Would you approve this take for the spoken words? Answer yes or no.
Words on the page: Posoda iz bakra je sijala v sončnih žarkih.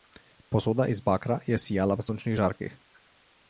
yes